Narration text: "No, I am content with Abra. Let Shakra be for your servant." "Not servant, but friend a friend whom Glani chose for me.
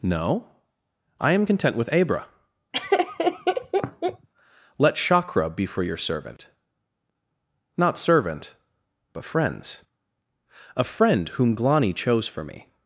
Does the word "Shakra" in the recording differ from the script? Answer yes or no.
no